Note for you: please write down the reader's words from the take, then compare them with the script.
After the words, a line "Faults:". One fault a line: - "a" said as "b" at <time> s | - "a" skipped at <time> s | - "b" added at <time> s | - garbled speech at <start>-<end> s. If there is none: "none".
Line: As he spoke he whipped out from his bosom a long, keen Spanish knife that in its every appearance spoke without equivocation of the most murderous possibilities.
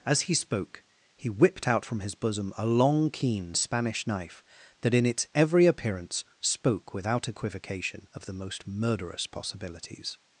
As he spoke he whipped out from his bosom a long, keen Spanish knife that in its every appearance spoke without equivocation of the most murderous possibilities.
Faults:
none